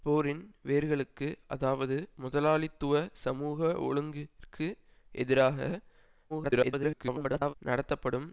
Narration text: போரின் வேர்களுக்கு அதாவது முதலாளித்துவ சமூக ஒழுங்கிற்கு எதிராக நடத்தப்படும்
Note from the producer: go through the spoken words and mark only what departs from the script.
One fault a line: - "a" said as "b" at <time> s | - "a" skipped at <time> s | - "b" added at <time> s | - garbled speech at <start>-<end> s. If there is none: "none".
- garbled speech at 6.3-7.5 s